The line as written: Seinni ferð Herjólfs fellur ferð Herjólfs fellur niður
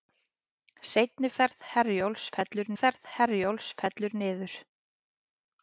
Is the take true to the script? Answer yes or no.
yes